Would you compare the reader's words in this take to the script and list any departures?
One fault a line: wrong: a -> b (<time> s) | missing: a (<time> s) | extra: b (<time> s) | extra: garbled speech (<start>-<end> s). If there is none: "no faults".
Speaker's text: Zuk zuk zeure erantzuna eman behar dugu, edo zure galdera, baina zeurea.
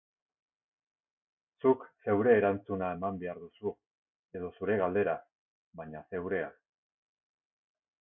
missing: zuk (1.9 s)
wrong: dugu -> duzu (3.4 s)